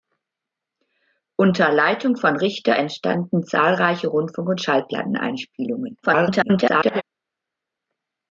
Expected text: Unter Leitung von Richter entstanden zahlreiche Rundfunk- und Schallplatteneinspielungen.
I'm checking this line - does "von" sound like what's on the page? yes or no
yes